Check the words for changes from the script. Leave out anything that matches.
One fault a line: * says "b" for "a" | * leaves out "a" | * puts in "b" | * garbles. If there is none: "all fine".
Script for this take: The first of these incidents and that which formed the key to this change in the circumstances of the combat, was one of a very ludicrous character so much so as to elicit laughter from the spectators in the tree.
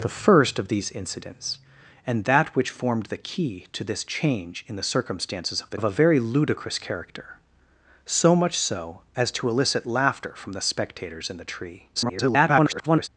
* leaves out "combat was one"
* garbles